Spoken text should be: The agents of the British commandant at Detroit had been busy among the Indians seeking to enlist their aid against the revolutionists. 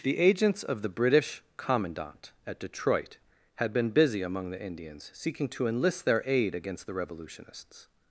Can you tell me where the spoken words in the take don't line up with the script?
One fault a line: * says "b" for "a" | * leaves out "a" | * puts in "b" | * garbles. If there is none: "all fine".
all fine